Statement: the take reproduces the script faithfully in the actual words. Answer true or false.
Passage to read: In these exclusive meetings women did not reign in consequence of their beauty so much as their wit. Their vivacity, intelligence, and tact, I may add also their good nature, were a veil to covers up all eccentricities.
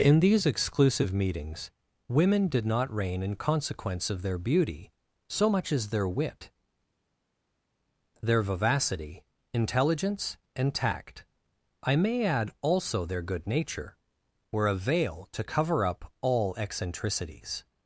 false